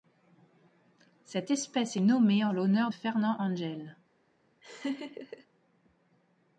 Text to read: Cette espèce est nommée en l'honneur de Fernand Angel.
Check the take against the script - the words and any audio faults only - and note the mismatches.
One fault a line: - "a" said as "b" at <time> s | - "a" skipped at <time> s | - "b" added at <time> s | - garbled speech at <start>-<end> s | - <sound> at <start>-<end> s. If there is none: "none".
- "de" skipped at 2.9 s
- laugh at 4.6-5.5 s